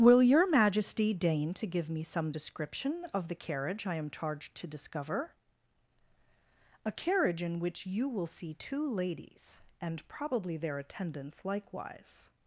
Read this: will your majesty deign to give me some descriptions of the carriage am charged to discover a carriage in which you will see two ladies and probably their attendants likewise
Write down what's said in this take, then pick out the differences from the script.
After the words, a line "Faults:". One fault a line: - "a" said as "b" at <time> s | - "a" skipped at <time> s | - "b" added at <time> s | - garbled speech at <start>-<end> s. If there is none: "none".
will your majesty deign to give me some description of the carriage i am charged to discover a carriage in which you will see two ladies and probably their attendants likewise
Faults:
- "descriptions" said as "description" at 2.3 s
- "i" added at 3.8 s